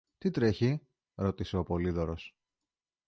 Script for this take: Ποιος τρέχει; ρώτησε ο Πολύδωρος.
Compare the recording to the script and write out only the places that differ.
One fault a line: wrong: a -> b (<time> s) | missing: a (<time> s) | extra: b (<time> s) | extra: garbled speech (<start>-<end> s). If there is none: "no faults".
wrong: Ποιος -> Τι (0.2 s)